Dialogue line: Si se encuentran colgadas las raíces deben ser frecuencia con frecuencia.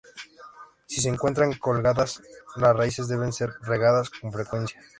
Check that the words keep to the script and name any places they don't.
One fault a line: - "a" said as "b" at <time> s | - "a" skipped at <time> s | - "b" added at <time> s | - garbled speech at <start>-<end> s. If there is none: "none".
- "frecuencia" said as "regadas" at 3.6 s